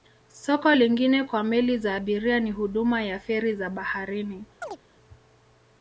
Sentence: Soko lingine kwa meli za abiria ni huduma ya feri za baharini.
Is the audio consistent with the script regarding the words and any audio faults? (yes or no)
no